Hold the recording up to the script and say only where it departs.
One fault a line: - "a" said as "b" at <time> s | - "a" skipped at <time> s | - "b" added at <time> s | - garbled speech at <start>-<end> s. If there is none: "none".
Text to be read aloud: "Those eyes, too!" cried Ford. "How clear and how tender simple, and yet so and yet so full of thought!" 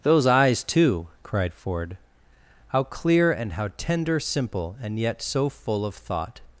- "and yet so" skipped at 5.5 s